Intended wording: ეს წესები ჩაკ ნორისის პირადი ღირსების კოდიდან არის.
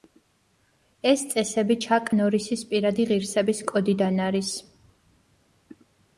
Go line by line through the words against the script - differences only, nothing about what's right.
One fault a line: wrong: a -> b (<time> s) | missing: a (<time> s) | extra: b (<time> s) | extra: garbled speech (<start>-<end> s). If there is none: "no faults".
no faults